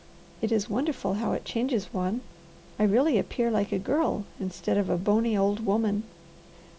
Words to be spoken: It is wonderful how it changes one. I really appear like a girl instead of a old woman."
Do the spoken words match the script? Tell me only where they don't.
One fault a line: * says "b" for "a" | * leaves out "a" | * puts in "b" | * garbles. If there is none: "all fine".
* puts in "bony"